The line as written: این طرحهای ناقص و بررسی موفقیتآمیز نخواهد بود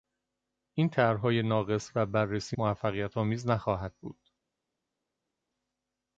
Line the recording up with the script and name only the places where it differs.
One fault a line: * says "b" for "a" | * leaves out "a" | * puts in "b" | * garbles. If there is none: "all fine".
all fine